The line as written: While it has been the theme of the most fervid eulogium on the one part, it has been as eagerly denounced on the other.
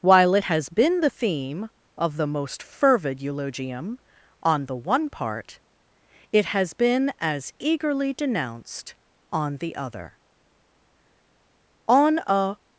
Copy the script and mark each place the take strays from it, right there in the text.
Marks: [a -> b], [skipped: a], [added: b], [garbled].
While it has been the theme of the most fervid eulogium on the one part, it has been as eagerly denounced on the other. [added: On a]